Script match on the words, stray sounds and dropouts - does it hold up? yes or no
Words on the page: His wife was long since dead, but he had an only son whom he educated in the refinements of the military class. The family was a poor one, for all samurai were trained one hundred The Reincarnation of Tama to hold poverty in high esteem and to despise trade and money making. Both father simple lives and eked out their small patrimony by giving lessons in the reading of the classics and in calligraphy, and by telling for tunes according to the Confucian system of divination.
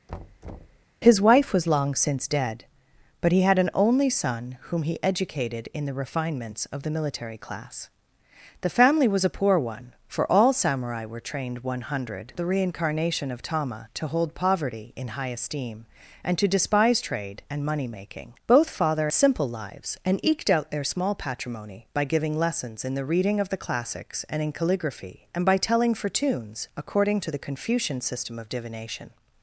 no